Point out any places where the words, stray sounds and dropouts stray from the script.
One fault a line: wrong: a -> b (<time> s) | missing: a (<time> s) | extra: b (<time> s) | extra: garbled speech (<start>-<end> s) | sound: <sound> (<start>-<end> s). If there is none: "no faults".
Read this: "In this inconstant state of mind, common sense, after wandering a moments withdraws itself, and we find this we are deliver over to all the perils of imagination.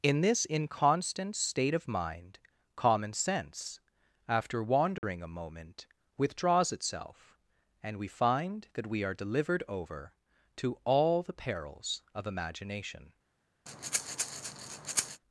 sound: dropout (5.0-5.0 s)
wrong: moments -> moment (5.3 s)
wrong: this -> that (8.7 s)
wrong: deliver -> delivered (9.1 s)
sound: breath (13.7-15.2 s)